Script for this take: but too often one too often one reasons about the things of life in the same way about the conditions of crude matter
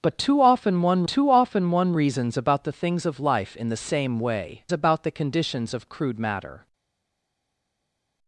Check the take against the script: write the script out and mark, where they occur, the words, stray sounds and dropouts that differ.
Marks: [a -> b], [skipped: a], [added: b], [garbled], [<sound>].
but too often one too often one reasons about the things of life in the same way about the conditions of crude matter